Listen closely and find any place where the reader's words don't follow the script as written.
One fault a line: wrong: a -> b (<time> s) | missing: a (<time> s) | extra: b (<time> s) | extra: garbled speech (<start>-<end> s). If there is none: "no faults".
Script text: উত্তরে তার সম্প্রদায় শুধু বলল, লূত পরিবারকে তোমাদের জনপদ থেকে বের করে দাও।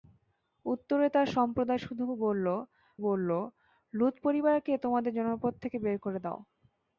extra: বলল (3.0 s)